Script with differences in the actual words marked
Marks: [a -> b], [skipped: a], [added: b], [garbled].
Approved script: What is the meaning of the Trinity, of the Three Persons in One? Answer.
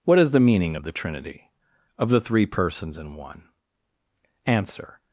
What is the meaning of the Trinity, of the Three Persons in One? Answer.